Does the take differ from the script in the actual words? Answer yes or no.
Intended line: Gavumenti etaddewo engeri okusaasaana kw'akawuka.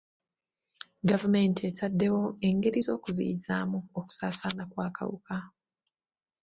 yes